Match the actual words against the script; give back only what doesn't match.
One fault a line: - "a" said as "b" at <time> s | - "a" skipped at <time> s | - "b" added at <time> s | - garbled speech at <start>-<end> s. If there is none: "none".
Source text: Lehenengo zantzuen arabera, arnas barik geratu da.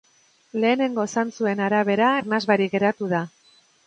none